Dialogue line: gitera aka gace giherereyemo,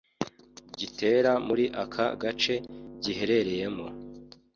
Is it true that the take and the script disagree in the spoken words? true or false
true